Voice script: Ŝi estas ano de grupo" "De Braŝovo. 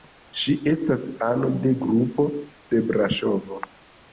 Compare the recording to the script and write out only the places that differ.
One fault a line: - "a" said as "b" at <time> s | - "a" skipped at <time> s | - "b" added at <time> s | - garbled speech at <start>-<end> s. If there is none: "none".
none